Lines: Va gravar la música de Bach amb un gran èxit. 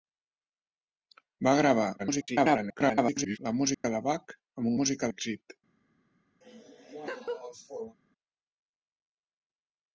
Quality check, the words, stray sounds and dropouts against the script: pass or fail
fail